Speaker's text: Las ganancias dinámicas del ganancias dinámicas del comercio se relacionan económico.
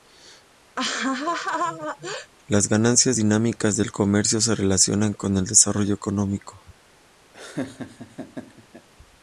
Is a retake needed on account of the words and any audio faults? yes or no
yes